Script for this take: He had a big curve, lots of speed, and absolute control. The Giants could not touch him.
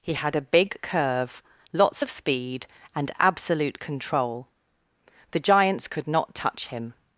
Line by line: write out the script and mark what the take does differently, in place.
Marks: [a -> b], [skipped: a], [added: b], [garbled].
He had a big curve, lots of speed, and absolute control. The Giants could not touch him.